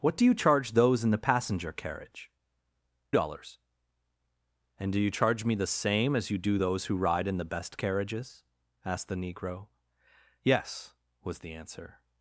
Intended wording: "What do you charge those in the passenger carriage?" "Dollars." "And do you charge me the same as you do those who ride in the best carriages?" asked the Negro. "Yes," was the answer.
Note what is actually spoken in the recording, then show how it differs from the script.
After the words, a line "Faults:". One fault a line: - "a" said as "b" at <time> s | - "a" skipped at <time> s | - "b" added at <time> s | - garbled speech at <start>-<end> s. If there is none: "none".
"What do you charge those in the passenger carriage?" "Dollars." "And do you charge me the same as you do those who ride in the best carriages?" asked the Negro. "Yes," was the answer.
Faults:
none